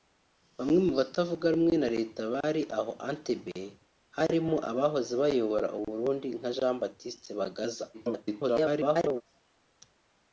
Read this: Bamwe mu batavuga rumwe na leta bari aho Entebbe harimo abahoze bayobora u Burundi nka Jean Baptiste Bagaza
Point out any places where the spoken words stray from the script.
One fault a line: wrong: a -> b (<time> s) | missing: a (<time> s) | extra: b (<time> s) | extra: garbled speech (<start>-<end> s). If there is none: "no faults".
extra: garbled speech (7.9-9.2 s)